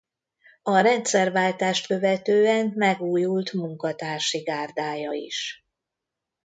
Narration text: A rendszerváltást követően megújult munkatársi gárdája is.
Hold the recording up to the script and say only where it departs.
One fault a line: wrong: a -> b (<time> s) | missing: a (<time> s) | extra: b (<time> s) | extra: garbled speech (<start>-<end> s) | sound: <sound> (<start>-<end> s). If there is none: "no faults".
no faults